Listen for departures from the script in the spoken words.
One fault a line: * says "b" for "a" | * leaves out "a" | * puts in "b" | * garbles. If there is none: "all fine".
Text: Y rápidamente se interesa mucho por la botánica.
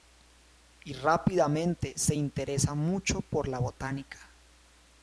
all fine